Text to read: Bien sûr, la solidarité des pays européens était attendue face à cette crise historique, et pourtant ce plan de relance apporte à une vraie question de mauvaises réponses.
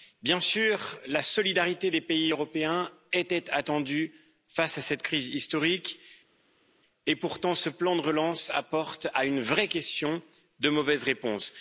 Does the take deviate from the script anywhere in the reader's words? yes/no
no